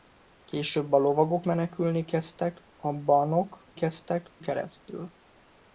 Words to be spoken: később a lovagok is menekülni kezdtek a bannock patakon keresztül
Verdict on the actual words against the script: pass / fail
fail